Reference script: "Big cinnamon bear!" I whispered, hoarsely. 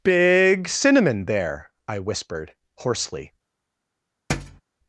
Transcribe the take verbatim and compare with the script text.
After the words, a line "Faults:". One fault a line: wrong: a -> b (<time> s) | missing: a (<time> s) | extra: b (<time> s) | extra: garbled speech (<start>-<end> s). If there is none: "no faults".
"Big cinnamon there!" I whispered, hoarsely.
Faults:
wrong: bear -> there (1.2 s)